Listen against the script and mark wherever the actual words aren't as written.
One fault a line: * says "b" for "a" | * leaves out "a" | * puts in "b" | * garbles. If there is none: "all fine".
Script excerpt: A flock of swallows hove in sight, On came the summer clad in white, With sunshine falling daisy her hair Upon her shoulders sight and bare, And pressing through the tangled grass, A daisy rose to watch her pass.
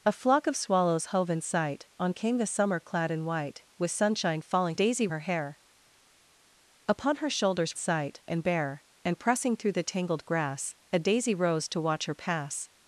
all fine